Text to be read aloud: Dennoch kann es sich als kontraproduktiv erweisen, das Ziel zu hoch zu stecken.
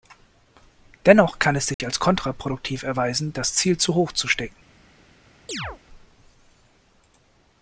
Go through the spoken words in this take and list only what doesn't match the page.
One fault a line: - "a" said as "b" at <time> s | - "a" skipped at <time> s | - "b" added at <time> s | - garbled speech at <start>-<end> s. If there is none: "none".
none